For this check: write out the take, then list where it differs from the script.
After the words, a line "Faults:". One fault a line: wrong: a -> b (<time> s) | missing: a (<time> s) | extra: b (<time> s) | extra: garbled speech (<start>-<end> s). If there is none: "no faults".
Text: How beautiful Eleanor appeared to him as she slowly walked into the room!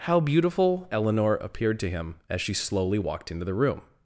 How beautiful Eleanor appeared to him as she slowly walked into the room!
Faults:
no faults